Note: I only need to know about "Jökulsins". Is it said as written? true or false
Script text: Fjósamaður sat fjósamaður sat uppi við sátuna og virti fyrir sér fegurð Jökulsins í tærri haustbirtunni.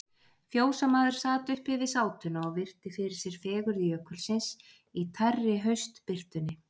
true